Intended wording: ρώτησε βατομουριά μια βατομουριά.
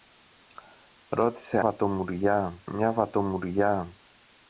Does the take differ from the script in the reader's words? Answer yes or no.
no